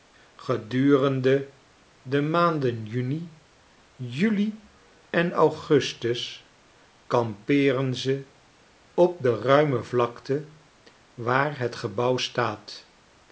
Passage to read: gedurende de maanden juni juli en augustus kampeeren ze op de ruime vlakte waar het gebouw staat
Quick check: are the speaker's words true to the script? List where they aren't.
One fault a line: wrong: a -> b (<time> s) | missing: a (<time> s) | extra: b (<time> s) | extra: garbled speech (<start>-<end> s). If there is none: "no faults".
no faults